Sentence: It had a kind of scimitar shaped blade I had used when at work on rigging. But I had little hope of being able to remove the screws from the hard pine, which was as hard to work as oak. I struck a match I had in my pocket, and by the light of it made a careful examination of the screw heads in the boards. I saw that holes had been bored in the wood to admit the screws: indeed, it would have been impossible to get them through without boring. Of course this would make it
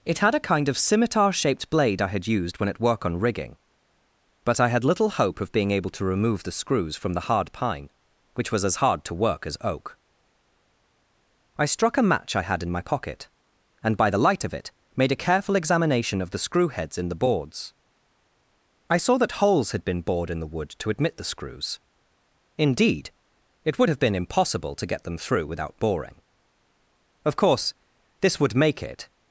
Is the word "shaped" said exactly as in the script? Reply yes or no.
yes